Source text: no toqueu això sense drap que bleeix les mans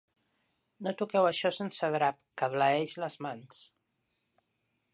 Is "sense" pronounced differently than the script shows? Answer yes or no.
no